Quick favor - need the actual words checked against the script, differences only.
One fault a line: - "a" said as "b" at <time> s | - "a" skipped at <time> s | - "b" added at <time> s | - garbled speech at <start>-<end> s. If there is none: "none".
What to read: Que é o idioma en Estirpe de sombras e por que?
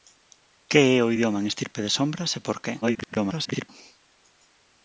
- garbled speech at 2.8-3.7 s